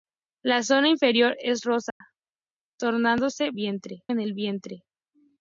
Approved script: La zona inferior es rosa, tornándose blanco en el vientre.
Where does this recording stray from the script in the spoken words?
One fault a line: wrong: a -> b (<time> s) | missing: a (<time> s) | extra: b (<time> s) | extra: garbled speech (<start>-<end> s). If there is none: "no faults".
wrong: blanco -> vientre (3.5 s)